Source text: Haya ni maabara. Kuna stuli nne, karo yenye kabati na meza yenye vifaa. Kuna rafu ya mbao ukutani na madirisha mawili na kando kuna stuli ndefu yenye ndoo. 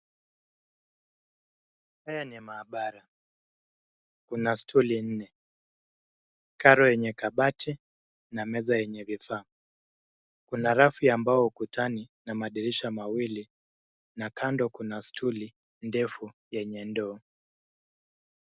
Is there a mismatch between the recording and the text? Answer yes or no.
no